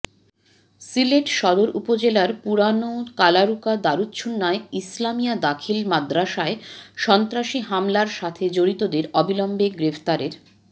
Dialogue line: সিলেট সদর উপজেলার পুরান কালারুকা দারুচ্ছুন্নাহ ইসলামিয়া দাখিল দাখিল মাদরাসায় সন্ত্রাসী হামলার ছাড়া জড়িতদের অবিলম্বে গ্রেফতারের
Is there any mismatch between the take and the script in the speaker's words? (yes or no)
yes